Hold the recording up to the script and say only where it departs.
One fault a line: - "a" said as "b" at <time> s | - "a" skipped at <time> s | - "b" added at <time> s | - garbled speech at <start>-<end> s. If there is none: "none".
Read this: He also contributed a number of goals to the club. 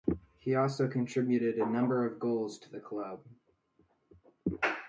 none